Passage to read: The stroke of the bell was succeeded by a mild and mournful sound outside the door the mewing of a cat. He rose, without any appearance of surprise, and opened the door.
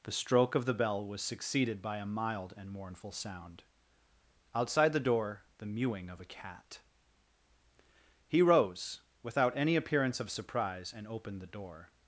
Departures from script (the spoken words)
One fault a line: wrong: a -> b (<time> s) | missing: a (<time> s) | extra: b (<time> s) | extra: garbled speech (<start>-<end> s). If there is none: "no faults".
no faults